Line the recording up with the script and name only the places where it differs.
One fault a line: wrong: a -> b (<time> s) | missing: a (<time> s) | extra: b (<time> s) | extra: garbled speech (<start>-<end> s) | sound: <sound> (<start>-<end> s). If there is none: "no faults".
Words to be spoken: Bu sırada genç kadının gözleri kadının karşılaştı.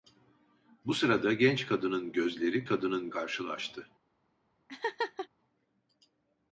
sound: laugh (4.7-5.3 s)